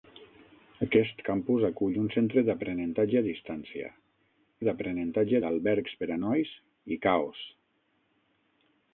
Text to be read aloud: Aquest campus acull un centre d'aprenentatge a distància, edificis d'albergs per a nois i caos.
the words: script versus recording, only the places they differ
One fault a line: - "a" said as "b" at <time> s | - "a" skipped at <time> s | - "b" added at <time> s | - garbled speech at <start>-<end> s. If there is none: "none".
- "edificis" said as "d'aprenentatge" at 4.7 s